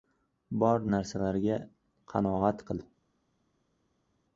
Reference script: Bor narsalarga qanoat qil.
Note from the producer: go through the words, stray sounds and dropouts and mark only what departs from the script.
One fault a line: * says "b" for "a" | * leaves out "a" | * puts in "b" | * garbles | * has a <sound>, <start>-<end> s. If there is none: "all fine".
all fine